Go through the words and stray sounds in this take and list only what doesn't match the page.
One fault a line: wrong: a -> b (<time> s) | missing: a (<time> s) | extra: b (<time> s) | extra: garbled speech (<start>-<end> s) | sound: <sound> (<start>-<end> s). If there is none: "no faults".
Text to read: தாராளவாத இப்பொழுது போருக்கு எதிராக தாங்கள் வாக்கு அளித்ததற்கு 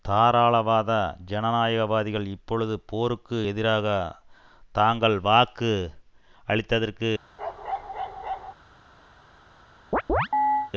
extra: ஜனநாயகவாதிகள் (1.2 s)
sound: bark (7.4-8.5 s)
sound: chirp (9.9-10.7 s)